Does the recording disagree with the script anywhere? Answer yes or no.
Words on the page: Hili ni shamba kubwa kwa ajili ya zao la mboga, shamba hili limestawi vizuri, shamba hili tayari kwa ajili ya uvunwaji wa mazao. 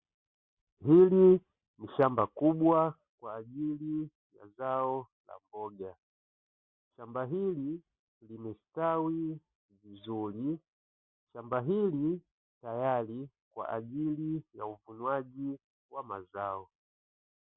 no